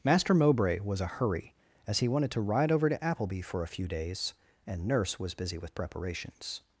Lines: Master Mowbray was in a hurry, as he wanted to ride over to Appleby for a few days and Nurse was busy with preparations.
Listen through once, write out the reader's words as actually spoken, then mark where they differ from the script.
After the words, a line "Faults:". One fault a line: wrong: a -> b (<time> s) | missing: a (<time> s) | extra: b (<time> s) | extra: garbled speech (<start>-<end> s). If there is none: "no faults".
Master Mowbray was a hurry, as he wanted to ride over to Appleby for a few days and Nurse was busy with preparations.
Faults:
missing: in (1.0 s)